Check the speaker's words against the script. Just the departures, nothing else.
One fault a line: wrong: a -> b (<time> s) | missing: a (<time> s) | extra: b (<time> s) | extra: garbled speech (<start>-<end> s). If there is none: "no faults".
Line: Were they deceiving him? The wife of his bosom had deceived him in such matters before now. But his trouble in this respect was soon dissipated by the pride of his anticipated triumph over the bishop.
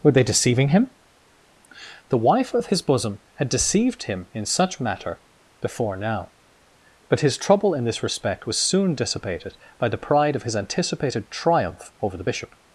wrong: matters -> matter (4.8 s)